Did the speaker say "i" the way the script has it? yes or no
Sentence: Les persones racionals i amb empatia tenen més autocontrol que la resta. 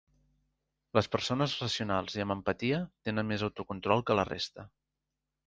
yes